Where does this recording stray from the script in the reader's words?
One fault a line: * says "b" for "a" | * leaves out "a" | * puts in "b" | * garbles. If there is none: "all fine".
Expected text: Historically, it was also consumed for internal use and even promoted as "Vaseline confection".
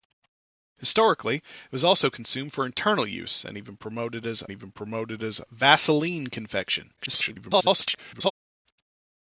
* puts in "even promoted as"
* garbles